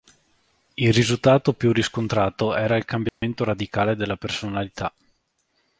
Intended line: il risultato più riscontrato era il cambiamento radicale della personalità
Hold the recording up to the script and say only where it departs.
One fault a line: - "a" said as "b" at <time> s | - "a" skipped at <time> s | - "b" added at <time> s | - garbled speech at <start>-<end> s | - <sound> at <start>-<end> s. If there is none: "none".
- dropout at 3.1-3.2 s